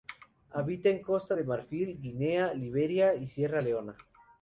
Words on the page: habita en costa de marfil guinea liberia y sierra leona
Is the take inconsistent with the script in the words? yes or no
no